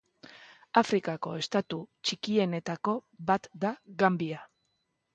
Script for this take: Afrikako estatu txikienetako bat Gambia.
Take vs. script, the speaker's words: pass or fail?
fail